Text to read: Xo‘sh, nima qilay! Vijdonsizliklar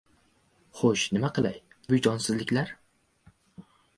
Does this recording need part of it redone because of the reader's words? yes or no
no